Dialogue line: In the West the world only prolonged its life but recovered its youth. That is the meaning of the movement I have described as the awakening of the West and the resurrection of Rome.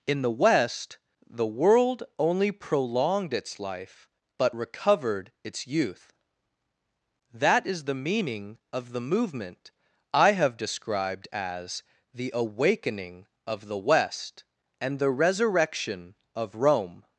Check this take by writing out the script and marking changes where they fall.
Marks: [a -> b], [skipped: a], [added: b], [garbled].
In the West the world only prolonged its life but recovered its youth. That is the meaning of the movement I have described as the awakening of the West and the resurrection of Rome.